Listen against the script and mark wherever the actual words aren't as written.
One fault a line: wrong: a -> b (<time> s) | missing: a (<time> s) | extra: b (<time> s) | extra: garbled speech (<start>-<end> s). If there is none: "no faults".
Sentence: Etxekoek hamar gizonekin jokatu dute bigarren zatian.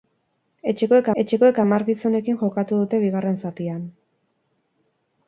extra: etxekoek (1.2 s)